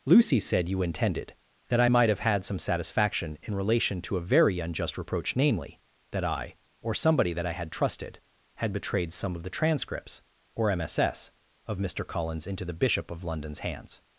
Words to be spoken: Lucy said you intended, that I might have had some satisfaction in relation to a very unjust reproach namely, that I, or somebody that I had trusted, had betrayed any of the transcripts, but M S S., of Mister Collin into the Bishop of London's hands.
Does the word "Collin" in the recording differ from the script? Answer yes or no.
yes